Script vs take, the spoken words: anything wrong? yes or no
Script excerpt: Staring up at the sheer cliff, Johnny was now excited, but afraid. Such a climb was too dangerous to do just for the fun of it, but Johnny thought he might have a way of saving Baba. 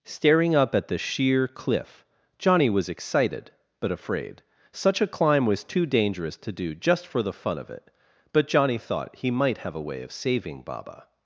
yes